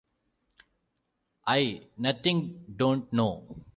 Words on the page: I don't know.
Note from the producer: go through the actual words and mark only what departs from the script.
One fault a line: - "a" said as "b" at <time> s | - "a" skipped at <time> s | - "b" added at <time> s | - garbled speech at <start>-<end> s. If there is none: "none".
- "nothing" added at 2.0 s